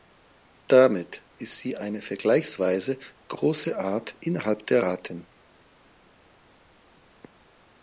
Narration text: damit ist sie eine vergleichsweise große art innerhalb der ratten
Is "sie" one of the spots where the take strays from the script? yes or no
no